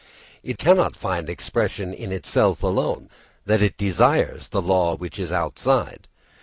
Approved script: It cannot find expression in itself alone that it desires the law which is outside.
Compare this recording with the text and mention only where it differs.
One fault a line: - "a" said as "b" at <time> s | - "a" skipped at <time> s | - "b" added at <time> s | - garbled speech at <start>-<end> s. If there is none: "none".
none